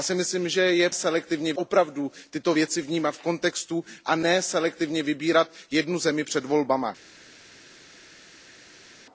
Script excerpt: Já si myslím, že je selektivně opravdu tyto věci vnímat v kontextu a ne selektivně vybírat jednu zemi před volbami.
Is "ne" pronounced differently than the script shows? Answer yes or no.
no